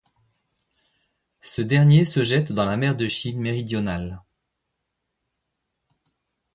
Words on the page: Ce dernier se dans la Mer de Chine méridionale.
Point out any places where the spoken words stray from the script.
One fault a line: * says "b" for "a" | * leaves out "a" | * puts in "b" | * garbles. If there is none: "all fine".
* puts in "jette"